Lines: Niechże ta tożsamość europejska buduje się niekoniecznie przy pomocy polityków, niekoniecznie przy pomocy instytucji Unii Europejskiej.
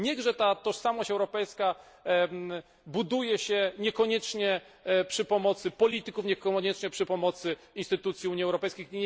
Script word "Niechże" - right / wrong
right